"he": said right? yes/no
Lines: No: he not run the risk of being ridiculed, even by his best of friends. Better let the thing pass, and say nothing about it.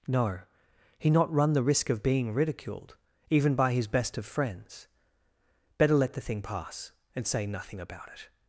yes